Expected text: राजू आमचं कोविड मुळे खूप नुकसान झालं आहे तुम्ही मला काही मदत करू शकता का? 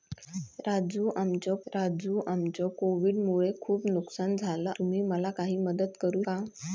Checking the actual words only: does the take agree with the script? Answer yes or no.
no